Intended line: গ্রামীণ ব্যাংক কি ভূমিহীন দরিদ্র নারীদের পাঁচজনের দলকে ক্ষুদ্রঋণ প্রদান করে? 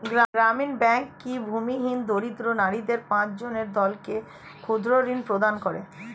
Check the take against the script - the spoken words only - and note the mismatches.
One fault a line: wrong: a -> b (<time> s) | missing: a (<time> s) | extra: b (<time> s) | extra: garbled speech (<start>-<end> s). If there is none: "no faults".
no faults